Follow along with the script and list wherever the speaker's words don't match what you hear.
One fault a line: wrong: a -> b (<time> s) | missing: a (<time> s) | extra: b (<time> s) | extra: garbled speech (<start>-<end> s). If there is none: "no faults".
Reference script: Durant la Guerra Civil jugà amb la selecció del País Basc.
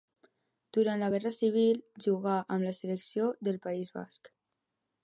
no faults